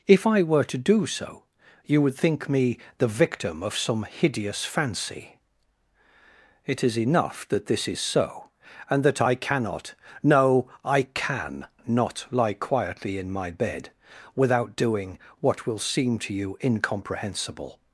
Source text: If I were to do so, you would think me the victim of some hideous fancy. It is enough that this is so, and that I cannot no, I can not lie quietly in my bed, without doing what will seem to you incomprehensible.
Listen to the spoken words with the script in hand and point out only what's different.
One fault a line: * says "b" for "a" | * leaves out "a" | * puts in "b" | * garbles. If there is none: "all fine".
all fine